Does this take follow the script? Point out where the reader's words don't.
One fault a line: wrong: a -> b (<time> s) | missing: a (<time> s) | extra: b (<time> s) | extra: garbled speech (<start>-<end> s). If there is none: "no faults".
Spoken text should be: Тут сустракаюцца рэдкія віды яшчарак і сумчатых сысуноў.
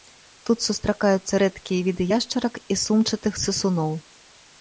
no faults